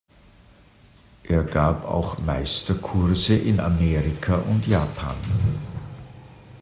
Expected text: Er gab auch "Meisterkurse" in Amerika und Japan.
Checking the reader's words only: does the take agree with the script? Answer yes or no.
yes